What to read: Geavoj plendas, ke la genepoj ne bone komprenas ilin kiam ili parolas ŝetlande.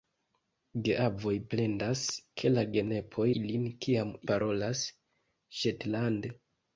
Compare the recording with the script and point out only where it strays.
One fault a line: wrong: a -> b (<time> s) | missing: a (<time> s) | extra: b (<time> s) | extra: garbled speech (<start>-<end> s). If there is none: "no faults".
missing: ne bone komprenas (3.3 s)
missing: ili (4.2 s)